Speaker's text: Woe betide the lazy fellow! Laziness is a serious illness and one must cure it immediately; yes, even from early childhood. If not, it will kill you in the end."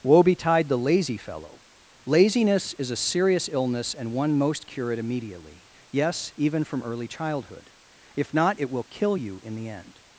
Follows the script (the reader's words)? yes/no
no